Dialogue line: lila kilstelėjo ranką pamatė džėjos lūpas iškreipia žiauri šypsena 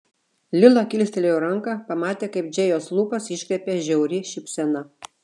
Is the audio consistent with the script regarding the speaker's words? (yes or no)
no